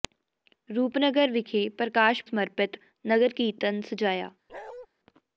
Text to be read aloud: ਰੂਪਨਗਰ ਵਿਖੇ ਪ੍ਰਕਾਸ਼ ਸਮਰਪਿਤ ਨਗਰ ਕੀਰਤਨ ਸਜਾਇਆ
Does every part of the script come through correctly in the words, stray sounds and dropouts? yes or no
no